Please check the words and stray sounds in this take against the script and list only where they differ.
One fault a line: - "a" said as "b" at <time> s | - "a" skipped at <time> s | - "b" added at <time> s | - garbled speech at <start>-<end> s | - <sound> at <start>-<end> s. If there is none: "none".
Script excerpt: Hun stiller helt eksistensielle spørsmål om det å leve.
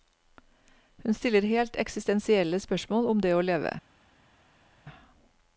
none